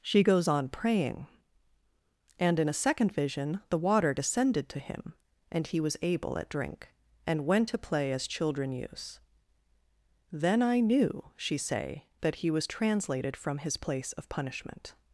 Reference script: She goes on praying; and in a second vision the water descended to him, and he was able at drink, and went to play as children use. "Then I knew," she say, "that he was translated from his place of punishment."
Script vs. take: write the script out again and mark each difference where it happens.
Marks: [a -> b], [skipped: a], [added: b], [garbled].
She goes on praying; and in a second vision the water descended to him, and he was able at drink, and went to play as children use. "Then I knew," she say, "that he was translated from his place of punishment."